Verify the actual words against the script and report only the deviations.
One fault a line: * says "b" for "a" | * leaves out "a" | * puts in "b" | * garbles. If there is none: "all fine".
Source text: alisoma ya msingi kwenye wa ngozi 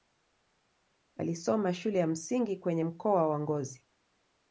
* puts in "shule"
* puts in "mkoa"